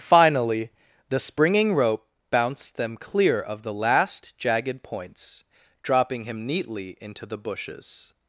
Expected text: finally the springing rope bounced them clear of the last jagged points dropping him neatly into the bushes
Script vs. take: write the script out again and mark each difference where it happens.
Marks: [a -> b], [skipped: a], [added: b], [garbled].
finally the springing rope bounced them clear of the last jagged points dropping him neatly into the bushes